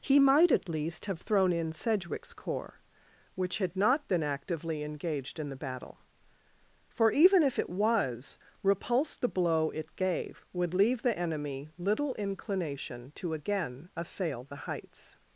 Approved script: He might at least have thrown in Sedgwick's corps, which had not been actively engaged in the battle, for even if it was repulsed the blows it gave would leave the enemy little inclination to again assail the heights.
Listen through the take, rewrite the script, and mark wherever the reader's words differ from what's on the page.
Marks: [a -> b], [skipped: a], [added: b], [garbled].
He might at least have thrown in Sedgwick's corps, which had not been actively engaged in the battle, for even if it was repulsed the [blows -> blow] it gave would leave the enemy little inclination to again assail the heights.